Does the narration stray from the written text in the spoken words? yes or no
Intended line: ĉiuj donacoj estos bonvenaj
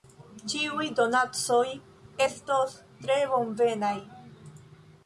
yes